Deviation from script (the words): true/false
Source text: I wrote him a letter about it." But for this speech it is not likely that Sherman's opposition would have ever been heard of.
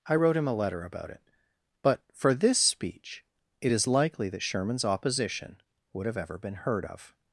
true